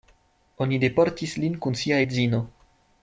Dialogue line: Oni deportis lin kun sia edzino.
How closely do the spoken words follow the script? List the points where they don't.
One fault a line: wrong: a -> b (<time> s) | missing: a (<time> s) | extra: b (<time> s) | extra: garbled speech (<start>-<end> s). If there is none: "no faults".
no faults